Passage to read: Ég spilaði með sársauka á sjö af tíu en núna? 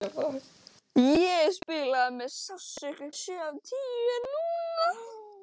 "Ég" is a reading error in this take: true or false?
false